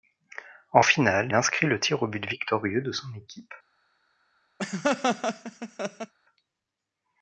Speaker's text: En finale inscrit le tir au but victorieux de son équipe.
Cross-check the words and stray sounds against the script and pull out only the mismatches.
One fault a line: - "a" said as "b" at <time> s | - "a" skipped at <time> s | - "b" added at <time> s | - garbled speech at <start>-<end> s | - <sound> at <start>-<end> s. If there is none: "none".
- laugh at 4.6-6.1 s